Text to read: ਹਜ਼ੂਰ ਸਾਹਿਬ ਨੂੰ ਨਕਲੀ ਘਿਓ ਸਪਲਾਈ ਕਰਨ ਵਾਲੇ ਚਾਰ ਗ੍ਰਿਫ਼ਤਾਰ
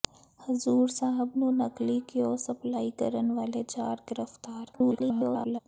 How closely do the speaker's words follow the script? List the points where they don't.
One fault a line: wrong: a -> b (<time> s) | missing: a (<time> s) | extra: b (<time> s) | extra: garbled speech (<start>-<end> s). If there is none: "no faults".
extra: garbled speech (4.7-5.6 s)